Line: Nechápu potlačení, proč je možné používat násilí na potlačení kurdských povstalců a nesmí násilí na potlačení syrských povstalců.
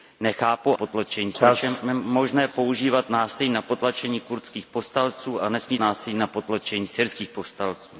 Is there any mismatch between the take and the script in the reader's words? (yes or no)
no